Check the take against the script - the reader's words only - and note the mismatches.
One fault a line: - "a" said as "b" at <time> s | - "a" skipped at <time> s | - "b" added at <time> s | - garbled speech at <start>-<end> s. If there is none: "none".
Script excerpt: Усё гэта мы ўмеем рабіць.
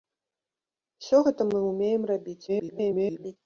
- garbled speech at 2.5-3.4 s